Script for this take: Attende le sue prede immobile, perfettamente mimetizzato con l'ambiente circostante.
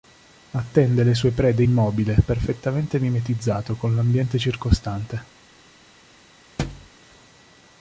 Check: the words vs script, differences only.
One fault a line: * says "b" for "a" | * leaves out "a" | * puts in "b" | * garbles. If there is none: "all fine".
all fine